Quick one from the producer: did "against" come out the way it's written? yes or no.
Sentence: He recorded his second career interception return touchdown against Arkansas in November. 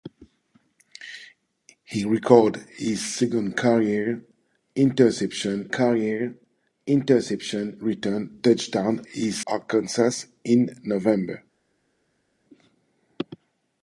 no